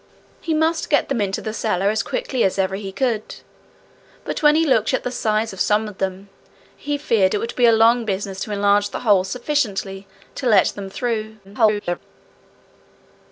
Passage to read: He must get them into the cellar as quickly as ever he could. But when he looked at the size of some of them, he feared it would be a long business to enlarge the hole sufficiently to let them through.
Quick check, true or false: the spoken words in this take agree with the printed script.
false